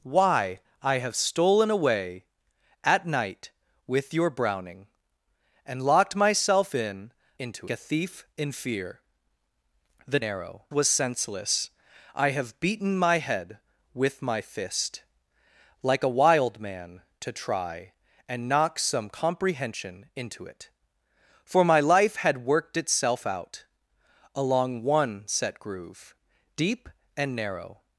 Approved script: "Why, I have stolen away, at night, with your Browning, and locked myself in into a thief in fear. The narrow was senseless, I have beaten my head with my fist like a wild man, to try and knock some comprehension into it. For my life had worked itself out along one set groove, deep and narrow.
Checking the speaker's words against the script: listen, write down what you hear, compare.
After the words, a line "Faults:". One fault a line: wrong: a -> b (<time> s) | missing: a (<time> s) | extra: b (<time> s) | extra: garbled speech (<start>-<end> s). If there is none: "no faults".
"Why, I have stolen away, at night, with your Browning, and locked myself in into a thief in fear. The narrow was senseless, I have beaten my head with my fist like a wild man, to try and knock some comprehension into it. For my life had worked itself out along one set groove, deep and narrow.
Faults:
no faults